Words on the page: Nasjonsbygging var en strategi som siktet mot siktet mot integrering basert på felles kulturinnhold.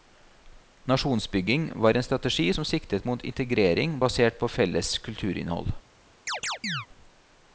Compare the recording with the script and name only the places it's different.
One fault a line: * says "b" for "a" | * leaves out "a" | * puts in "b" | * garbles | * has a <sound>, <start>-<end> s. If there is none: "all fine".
* leaves out "siktet mot"
* has a chirp, 6.3-6.9 s